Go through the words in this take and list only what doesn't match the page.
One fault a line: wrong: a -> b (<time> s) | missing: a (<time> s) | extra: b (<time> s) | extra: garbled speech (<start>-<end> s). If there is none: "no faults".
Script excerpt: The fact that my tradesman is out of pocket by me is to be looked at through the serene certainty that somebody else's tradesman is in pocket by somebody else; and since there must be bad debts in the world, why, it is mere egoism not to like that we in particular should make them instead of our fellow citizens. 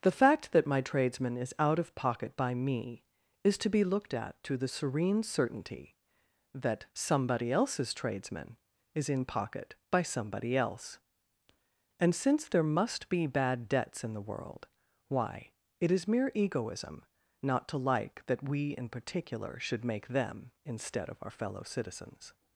wrong: through -> to (4.4 s)